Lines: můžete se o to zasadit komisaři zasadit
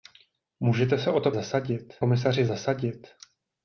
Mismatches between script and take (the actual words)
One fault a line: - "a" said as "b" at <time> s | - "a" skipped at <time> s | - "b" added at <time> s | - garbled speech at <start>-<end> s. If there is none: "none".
none